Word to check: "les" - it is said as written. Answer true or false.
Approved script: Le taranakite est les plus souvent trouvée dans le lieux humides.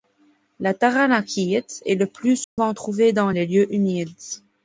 false